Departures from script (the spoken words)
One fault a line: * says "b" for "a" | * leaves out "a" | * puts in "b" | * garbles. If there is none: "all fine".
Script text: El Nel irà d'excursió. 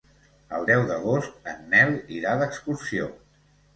* puts in "deu d'agost en"